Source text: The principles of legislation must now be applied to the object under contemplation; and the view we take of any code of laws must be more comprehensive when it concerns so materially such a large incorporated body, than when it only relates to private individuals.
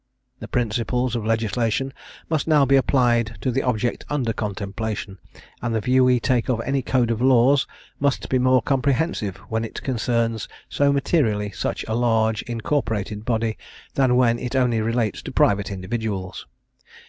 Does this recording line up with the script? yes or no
yes